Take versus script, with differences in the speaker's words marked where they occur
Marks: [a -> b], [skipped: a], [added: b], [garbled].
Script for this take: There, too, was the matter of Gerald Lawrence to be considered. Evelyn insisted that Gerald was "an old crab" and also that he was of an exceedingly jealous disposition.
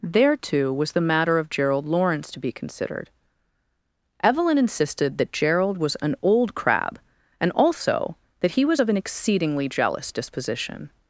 There, too, was the matter of Gerald Lawrence to be considered. Evelyn insisted that Gerald was "an old crab" and also that he was of an exceedingly jealous disposition.